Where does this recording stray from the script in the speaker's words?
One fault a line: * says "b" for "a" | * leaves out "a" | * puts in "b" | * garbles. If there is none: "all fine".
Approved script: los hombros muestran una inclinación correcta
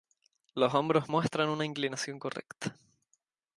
all fine